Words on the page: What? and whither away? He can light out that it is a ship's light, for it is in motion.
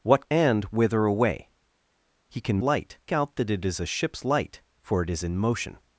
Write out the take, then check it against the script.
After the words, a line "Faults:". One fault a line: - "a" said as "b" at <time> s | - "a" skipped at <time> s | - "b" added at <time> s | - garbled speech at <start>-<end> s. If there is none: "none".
What? and whither away? He can light out that it is a ship's light, for it is in motion.
Faults:
none